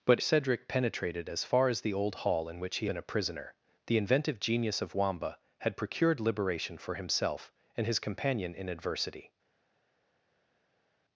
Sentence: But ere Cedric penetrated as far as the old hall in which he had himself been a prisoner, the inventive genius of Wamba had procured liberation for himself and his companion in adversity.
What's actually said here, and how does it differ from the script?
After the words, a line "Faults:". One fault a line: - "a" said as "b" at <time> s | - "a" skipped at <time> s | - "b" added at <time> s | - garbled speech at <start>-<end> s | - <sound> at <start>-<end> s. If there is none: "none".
But Cedric penetrated as far as the old hall in which he been a prisoner, the inventive genius of Wamba had procured liberation for himself and his companion in adversity.
Faults:
- "ere" skipped at 0.2 s
- "had himself" skipped at 2.9 s